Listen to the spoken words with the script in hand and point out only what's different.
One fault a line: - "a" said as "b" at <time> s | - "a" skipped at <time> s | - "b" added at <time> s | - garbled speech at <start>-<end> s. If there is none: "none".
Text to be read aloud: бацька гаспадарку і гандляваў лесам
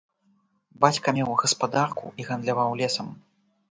- "меў" added at 1.1 s